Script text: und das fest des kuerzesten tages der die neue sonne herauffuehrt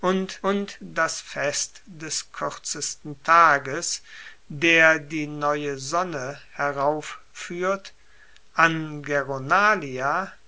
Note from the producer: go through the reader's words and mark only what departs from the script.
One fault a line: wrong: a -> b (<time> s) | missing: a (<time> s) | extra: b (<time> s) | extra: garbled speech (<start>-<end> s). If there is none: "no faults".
extra: und (0.4 s)